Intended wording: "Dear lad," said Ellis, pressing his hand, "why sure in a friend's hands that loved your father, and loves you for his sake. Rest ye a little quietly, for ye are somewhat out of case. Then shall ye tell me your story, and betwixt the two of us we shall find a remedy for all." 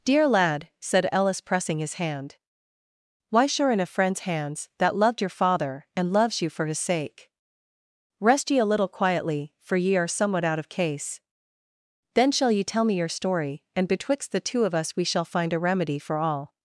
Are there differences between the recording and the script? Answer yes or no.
no